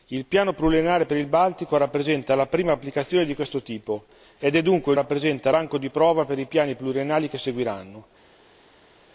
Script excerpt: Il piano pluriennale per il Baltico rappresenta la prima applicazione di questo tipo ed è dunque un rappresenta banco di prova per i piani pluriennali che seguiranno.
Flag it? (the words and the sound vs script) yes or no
no